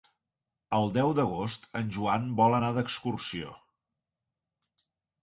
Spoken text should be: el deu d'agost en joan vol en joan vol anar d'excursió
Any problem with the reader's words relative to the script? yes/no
yes